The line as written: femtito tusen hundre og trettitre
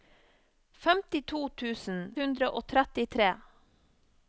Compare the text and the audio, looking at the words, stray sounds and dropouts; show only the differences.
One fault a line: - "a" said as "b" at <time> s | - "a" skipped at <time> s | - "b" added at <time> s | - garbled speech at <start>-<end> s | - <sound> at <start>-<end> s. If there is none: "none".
none